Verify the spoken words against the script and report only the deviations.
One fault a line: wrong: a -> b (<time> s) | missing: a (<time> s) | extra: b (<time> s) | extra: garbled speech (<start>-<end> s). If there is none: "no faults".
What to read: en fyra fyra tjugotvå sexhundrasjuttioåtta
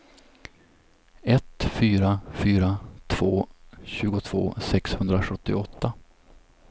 wrong: en -> ett (1.2 s)
extra: två (3.1 s)